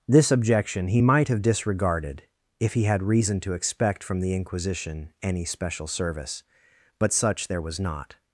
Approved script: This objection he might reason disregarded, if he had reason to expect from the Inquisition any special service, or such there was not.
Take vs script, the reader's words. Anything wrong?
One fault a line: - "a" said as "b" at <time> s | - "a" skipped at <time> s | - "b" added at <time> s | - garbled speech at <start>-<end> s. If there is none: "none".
- "reason" said as "have" at 1.3 s
- "or" said as "but" at 7.0 s